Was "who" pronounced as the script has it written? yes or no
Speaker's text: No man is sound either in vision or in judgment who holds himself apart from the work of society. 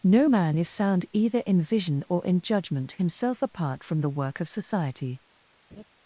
no